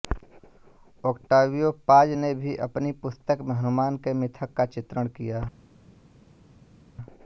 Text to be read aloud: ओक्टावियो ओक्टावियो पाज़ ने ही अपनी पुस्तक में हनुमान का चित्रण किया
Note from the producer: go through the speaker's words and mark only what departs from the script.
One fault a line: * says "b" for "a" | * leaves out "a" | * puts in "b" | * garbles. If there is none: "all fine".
* leaves out "ओक्टावियो"
* says "भी" for "ही"
* puts in "के मिथक"